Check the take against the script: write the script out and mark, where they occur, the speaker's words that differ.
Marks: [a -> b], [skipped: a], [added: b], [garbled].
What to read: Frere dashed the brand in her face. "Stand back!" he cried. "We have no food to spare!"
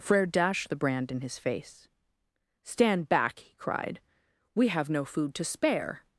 Frere dashed the brand in [her -> his] face. "Stand back!" he cried. "We have no food to spare!"